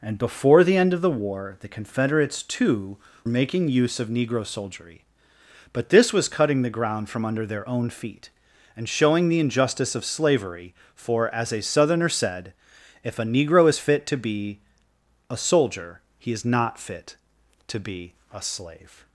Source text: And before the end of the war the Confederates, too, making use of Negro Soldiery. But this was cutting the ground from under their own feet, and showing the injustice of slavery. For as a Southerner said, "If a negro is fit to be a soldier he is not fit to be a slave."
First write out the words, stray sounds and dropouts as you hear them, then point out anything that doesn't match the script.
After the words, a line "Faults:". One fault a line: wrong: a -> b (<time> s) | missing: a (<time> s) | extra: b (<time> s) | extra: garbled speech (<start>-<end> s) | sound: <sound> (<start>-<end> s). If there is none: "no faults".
And before the end of the war the Confederates, too, making use of Negro Soldiery. But this was cutting the ground from under their own feet, and showing the injustice of slavery. For as a Southerner said, "If a negro is fit to be a soldier he is not fit to be a slave."
Faults:
no faults